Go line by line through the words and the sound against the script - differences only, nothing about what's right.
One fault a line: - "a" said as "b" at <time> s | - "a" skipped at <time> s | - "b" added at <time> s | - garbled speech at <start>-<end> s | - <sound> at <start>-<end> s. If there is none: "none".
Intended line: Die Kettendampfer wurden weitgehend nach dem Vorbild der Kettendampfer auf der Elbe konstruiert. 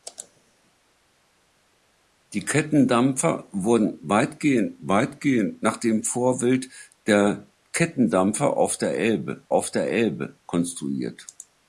- "weitgehend" added at 4.8 s
- "auf der Elbe" added at 9.5 s